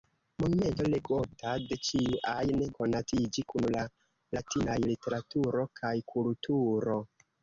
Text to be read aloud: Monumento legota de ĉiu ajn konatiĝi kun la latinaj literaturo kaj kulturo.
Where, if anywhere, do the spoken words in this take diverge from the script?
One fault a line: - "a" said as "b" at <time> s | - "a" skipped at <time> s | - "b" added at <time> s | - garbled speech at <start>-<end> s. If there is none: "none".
none